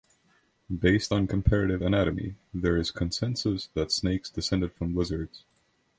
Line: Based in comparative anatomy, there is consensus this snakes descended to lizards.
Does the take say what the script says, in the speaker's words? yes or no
no